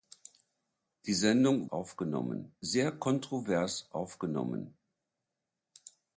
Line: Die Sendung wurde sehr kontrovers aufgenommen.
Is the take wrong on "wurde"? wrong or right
wrong